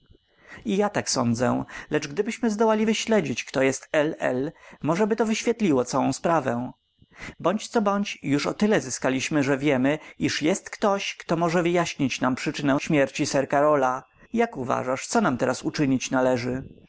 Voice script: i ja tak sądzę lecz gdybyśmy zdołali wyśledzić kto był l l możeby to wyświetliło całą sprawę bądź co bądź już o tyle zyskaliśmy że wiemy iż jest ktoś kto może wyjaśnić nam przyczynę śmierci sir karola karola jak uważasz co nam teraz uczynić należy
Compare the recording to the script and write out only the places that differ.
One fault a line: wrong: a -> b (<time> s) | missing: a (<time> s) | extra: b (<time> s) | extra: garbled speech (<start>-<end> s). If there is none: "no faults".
wrong: był -> jest (3.6 s)
missing: karola (14.0 s)